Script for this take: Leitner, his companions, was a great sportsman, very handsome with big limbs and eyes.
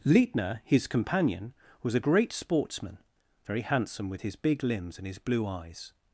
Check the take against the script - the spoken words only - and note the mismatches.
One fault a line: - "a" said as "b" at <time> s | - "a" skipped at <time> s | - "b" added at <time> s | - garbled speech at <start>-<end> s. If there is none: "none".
- "companions" said as "companion" at 0.9 s
- "his" added at 4.2 s
- "his blue" added at 5.1 s